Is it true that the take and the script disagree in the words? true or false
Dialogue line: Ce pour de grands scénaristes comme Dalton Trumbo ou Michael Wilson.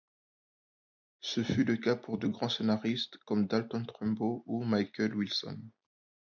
true